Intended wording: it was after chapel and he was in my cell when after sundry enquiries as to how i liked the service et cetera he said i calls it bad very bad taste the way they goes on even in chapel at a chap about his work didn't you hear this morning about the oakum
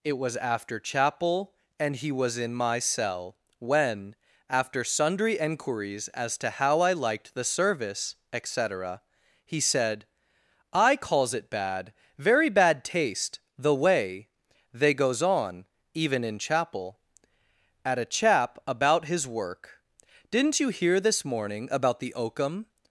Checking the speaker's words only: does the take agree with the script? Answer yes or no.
yes